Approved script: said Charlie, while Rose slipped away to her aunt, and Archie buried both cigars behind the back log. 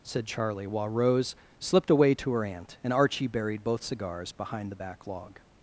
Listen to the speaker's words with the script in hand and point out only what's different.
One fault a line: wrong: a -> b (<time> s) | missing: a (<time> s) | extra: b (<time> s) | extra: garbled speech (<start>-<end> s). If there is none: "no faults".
no faults